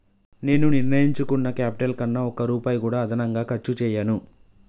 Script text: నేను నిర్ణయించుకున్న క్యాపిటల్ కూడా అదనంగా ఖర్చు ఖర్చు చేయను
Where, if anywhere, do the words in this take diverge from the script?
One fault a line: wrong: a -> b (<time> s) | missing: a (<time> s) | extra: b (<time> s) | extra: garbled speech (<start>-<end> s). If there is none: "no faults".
extra: కన్నా ఒక్క రూపాయి (1.9 s)
missing: ఖర్చు (3.7 s)